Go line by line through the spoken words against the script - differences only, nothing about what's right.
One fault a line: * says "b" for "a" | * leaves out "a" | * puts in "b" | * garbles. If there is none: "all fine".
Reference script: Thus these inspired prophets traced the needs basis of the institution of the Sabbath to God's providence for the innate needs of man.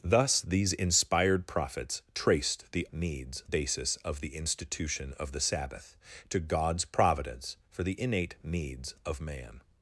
all fine